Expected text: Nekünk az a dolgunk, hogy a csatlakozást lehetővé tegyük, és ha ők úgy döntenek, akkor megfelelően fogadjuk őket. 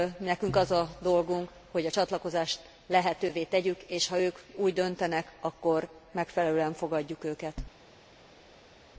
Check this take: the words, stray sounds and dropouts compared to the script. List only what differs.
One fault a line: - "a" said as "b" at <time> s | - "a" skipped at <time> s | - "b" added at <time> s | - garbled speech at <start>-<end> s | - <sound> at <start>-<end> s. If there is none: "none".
none